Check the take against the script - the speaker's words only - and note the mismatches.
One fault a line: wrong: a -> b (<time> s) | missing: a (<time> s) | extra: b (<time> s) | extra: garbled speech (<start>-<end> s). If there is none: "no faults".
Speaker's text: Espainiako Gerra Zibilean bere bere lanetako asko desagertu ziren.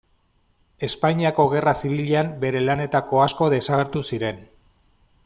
missing: bere (2.6 s)